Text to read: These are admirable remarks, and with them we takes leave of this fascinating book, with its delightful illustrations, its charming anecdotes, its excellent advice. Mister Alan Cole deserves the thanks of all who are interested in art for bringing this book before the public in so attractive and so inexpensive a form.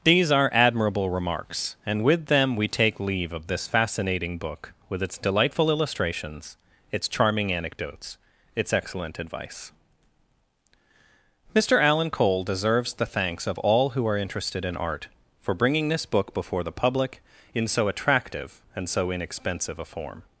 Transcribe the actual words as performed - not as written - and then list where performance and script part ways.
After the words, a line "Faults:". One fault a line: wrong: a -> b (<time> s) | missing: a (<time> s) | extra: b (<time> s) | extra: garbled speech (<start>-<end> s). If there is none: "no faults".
These are admirable remarks, and with them we take leave of this fascinating book, with its delightful illustrations, its charming anecdotes, its excellent advice. Mister Alan Cole deserves the thanks of all who are interested in art for bringing this book before the public in so attractive and so inexpensive a form.
Faults:
wrong: takes -> take (2.7 s)